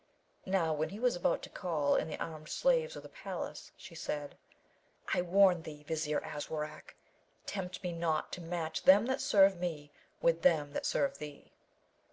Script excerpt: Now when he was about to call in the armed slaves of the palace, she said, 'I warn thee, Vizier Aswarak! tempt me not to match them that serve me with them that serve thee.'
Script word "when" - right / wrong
right